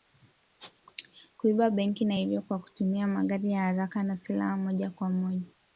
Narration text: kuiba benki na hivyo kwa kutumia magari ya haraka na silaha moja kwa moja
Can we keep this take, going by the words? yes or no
yes